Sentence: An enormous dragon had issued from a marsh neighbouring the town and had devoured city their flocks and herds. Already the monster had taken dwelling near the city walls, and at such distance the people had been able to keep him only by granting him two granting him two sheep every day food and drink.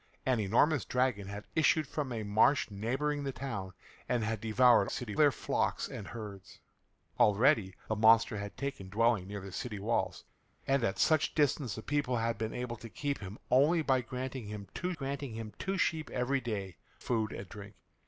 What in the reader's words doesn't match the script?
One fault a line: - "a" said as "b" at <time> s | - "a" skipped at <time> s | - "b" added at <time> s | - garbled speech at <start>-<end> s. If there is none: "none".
none